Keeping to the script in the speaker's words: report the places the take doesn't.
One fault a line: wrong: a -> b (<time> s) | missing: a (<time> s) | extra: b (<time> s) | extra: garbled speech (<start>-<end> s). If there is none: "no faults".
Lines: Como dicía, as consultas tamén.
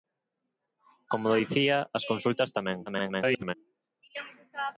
extra: garbled speech (2.9-3.5 s)